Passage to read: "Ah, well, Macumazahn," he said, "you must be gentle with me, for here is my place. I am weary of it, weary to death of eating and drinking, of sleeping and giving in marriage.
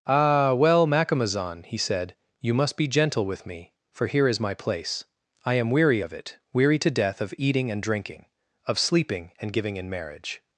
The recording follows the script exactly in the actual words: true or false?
true